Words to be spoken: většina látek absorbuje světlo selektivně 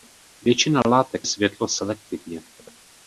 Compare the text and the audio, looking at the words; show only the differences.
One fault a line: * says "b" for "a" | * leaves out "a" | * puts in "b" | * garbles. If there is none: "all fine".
* leaves out "absorbuje"